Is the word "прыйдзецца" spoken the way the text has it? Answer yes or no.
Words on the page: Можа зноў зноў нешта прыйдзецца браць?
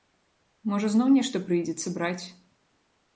yes